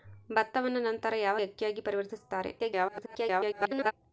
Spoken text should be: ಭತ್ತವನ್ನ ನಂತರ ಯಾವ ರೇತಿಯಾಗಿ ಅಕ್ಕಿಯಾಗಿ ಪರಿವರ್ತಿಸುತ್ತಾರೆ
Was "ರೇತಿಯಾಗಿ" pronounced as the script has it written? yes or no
no